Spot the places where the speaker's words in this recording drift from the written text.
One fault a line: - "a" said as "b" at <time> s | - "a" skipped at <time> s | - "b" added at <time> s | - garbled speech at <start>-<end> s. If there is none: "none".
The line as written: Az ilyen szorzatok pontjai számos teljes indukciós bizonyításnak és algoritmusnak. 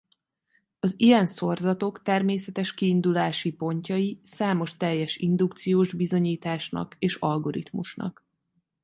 - "természetes kiindulási" added at 2.0 s